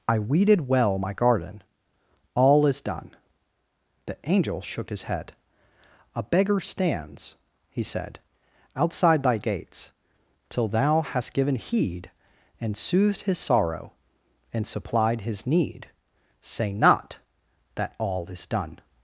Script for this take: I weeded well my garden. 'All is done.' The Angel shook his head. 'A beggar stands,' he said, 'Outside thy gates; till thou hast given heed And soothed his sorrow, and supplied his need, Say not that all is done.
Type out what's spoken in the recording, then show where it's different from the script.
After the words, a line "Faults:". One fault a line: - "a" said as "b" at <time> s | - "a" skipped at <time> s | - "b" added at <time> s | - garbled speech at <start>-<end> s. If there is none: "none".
I weeded well my garden. 'All is done.' The Angel shook his head. 'A beggar stands,' he said, 'Outside thy gates; till thou hast given heed And soothed his sorrow, and supplied his need, Say not that all is done.
Faults:
none